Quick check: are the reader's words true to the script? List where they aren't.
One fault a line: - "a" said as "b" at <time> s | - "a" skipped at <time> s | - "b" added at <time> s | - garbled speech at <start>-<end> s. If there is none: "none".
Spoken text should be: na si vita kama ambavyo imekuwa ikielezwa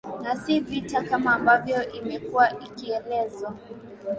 none